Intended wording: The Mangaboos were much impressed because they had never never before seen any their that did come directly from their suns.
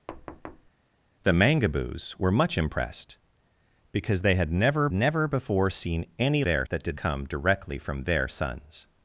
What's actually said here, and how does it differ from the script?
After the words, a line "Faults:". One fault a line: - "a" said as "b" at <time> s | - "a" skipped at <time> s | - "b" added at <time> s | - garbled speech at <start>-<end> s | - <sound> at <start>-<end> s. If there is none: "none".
The Mangaboos were much impressed because they had never never before seen any their that did come directly from their suns.
Faults:
- thud at 0.1-0.7 s